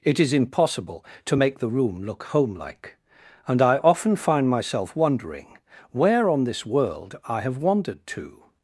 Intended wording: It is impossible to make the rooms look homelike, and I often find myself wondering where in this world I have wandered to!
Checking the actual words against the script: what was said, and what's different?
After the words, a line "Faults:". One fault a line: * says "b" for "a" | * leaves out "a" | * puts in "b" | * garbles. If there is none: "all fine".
It is impossible to make the room look homelike, and I often find myself wondering where on this world I have wandered to!
Faults:
* says "room" for "rooms"
* says "on" for "in"